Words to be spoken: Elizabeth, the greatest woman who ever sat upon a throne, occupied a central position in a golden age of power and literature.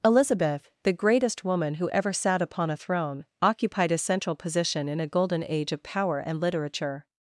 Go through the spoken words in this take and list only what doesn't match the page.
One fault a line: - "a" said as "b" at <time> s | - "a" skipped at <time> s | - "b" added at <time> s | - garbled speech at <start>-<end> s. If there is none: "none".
none